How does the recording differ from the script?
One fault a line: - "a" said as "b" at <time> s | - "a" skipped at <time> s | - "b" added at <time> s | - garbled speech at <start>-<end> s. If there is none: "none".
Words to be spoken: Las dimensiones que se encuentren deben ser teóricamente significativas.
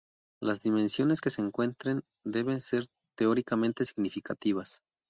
none